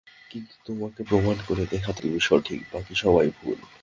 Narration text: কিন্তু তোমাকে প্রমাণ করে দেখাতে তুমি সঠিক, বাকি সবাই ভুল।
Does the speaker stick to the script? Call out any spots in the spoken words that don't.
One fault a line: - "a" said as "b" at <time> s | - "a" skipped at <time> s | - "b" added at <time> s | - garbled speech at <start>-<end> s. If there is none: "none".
none